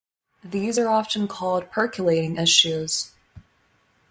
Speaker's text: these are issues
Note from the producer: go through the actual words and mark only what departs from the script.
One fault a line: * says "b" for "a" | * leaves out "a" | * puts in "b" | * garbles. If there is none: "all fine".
* puts in "often called percolating"